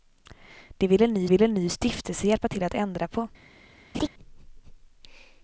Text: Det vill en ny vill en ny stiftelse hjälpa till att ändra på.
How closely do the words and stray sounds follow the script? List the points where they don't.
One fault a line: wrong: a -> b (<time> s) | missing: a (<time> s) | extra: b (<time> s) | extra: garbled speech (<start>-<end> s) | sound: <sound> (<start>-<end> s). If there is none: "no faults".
sound: laugh (3.9-4.1 s)